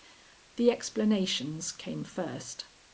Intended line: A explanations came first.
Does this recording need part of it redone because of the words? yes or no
yes